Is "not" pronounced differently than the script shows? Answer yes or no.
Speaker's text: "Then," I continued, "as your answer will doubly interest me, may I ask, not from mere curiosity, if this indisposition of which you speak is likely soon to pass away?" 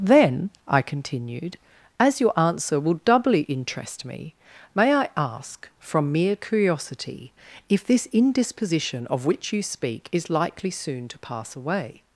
yes